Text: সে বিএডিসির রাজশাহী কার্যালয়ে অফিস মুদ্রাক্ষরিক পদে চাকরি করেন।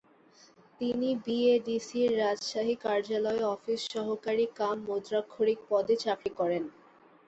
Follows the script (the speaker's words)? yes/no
no